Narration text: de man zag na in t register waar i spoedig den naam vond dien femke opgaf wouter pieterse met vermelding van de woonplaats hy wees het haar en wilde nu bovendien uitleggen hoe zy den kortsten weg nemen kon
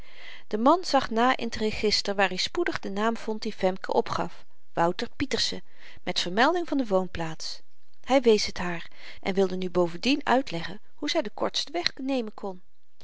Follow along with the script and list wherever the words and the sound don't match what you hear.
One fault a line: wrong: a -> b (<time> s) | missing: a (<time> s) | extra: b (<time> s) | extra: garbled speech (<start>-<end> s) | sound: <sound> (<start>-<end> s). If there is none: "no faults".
no faults